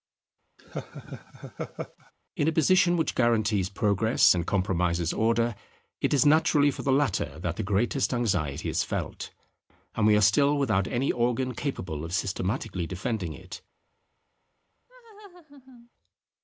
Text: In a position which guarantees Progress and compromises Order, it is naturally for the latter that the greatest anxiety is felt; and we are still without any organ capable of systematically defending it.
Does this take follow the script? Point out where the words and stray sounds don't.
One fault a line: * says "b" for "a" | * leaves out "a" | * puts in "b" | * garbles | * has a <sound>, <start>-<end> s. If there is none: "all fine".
* has a laugh, 0.6-2.1 s
* has a laugh, 14.9-15.9 s